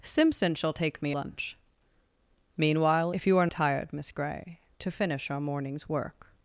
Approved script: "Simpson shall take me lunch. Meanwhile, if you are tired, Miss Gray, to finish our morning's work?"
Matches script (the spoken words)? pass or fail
pass